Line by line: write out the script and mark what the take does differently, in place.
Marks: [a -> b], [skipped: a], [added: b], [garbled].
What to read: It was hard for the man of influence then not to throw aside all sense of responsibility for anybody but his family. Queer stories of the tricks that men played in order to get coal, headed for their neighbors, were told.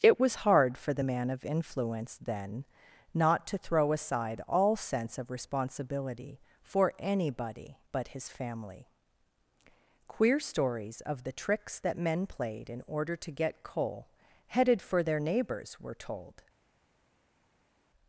It was hard for the man of influence then not to throw aside all sense of responsibility for anybody but his family. Queer stories of the tricks that men played in order to get coal, headed for their neighbors, were told.